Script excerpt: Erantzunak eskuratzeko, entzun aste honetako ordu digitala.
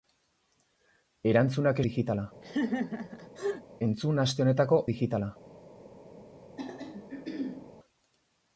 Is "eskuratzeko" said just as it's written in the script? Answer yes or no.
no